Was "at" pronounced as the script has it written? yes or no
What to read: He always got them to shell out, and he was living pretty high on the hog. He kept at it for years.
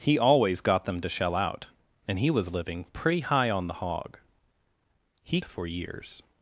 no